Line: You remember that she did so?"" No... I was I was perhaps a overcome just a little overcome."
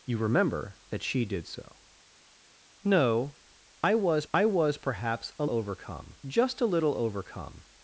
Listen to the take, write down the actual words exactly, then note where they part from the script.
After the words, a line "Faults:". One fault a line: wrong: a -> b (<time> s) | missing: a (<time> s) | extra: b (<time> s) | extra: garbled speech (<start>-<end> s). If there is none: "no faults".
You remember that she did so?"" No... I was I was perhaps a overcome just a little overcome."
Faults:
no faults